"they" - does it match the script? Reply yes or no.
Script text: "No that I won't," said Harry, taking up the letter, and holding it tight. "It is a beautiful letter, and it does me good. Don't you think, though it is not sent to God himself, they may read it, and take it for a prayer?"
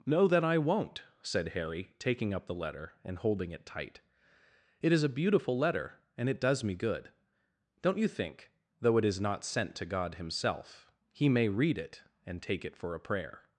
no